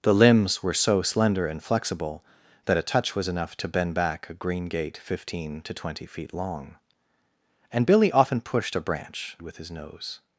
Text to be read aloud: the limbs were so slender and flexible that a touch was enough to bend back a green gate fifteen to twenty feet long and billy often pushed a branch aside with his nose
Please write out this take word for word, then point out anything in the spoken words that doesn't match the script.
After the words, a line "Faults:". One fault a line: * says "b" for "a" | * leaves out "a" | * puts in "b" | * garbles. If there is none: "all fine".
the limbs were so slender and flexible that a touch was enough to bend back a green gate fifteen to twenty feet long and billy often pushed a branch with his nose
Faults:
* leaves out "aside"